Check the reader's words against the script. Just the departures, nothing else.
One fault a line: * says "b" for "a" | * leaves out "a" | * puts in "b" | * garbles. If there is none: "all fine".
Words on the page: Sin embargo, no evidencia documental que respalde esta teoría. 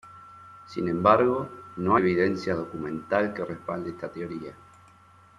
all fine